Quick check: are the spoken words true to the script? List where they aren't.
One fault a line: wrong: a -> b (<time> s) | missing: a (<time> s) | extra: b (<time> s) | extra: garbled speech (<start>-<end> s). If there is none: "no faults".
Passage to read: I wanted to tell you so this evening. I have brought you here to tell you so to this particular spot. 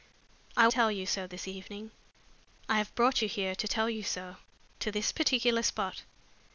missing: wanted to (0.7 s)